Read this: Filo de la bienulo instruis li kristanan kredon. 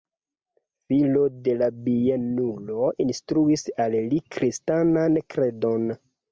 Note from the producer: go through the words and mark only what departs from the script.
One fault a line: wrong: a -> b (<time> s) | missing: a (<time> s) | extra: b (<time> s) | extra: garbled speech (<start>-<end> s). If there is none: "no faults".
extra: al (3.9 s)